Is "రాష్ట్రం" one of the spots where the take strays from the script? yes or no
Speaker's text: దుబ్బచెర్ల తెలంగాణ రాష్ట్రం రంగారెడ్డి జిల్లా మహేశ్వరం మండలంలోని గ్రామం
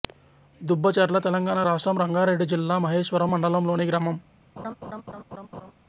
no